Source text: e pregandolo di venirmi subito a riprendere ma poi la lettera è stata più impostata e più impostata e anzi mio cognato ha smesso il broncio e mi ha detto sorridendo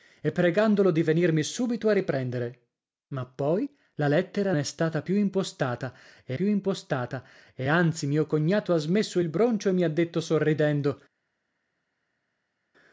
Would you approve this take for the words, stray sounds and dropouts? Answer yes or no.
yes